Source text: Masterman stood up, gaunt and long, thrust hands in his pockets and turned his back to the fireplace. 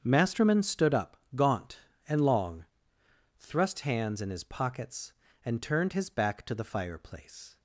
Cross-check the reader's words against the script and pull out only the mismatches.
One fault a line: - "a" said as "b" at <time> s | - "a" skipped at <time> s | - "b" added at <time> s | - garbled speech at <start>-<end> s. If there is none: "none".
none